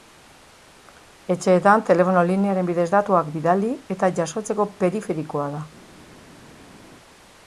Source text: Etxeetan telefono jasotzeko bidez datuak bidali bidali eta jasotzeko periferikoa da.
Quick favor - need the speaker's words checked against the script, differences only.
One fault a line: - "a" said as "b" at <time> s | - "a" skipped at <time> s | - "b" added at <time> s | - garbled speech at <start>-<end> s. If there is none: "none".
- "jasotzeko" said as "linearen" at 2.3 s
- "bidali" skipped at 3.7 s